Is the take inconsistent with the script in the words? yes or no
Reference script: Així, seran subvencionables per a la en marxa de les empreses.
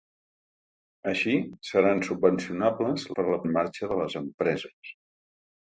no